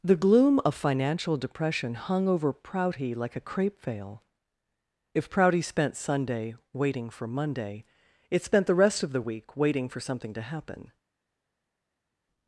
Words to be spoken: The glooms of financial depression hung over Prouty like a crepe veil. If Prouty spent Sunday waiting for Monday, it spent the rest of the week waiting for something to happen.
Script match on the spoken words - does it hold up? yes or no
no